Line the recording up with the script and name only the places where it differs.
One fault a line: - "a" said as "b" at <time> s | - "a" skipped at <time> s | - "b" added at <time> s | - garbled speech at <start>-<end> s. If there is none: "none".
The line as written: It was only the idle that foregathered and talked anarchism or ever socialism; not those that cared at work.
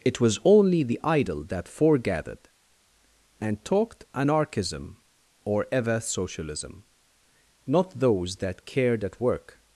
none